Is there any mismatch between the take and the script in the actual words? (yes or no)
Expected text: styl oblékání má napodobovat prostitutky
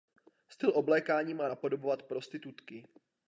no